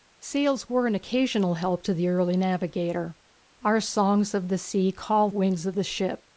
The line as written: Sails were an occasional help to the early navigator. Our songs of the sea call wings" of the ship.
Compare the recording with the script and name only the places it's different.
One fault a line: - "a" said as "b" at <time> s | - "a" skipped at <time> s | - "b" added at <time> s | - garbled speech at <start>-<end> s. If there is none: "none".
none